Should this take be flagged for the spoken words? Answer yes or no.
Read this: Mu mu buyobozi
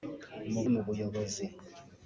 no